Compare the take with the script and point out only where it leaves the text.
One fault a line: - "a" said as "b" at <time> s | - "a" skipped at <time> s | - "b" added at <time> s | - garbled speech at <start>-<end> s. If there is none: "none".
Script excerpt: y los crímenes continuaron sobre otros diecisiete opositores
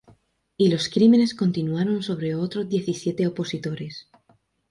none